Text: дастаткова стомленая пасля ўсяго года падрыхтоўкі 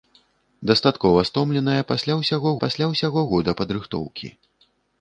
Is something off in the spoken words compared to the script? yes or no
yes